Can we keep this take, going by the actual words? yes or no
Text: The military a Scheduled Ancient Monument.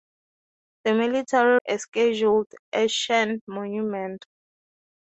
yes